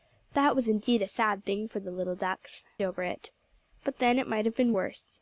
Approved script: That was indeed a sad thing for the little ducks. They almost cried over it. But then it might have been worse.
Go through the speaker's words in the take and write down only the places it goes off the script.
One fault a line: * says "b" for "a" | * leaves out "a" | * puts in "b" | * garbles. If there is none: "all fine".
* leaves out "They almost cried"